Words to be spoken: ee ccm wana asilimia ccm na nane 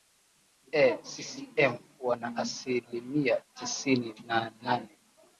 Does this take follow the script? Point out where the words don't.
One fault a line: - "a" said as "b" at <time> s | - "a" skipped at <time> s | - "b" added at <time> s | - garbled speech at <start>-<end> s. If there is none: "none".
- "ccm" said as "tisini" at 3.5 s